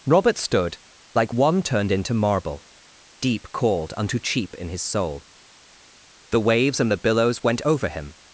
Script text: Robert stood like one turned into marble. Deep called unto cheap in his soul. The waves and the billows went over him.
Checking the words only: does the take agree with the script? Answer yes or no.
yes